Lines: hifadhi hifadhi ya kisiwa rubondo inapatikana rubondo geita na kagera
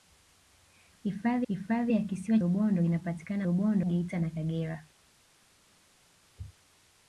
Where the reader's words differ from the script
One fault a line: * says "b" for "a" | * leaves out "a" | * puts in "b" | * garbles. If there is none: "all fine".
all fine